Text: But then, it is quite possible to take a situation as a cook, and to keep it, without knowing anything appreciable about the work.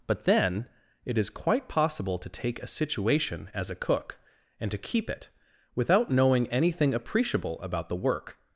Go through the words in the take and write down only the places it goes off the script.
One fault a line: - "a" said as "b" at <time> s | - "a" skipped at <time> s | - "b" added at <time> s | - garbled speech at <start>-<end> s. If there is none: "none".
none